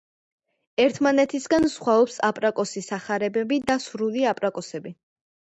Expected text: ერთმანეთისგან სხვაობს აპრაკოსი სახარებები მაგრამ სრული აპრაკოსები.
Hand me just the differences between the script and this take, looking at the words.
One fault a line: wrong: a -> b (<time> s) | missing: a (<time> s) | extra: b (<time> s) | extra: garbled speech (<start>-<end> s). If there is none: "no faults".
wrong: მაგრამ -> და (3.7 s)